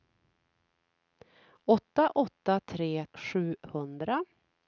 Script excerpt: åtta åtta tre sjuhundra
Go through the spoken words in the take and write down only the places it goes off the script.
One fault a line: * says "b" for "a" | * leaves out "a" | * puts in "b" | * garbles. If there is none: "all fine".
all fine